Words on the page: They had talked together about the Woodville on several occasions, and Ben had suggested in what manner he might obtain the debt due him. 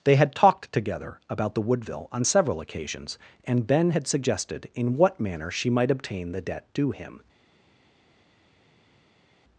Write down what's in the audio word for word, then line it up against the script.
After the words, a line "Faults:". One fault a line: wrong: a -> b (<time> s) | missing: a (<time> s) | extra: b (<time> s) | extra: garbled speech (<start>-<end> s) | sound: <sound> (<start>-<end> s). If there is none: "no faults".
They had talked together about the Woodville on several occasions, and Ben had suggested in what manner she might obtain the debt due him.
Faults:
wrong: he -> she (5.5 s)